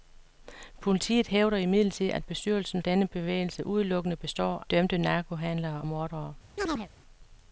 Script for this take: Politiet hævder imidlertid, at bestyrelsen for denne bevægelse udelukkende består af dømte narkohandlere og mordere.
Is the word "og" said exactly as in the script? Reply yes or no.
no